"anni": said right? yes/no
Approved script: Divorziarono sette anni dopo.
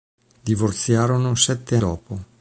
no